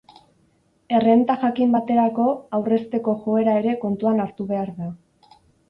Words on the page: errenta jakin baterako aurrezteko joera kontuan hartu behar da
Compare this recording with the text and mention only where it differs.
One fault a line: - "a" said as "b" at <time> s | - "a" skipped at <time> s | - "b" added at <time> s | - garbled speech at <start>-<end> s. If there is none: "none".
- "ere" added at 3.7 s